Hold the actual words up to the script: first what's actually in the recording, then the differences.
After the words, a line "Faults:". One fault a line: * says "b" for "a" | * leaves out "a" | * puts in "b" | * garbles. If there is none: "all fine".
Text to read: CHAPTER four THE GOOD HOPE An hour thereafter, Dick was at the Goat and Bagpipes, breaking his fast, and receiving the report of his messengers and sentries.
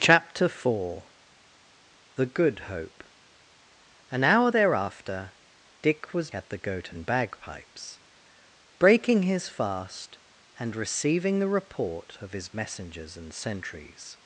CHAPTER four THE GOOD HOPE An hour thereafter, Dick was at the Goat and Bagpipes, breaking his fast, and receiving the report of his messengers and sentries.
Faults:
all fine